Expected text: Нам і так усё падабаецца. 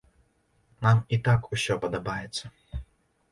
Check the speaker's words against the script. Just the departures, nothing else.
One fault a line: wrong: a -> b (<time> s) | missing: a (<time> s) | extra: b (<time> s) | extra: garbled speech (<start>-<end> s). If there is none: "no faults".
no faults